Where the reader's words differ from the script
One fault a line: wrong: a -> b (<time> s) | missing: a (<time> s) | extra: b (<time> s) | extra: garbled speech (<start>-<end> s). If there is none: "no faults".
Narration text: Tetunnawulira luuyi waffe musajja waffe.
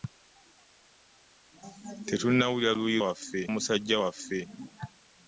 no faults